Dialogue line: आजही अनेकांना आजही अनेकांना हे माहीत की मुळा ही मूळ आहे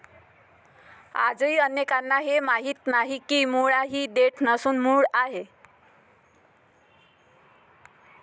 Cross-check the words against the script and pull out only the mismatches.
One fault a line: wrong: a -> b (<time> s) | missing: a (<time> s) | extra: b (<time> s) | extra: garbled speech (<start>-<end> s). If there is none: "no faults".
missing: आजही अनेकांना (2.2 s)
extra: नाही (2.9 s)
extra: देठ नसून (4.1 s)